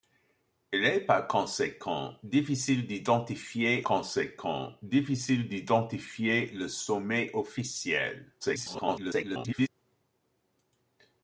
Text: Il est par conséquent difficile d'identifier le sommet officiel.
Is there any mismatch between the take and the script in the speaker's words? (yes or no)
yes